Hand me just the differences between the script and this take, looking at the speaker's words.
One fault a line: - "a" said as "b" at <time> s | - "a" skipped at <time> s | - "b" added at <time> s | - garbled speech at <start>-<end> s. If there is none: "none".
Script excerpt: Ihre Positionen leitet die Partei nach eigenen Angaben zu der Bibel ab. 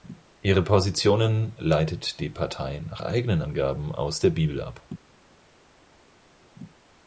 - "zu" said as "aus" at 3.9 s